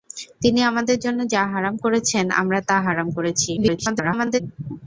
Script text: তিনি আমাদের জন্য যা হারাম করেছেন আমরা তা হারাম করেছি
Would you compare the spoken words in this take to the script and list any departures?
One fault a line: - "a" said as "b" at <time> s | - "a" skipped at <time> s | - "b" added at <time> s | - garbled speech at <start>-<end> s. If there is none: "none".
- garbled speech at 3.6-4.4 s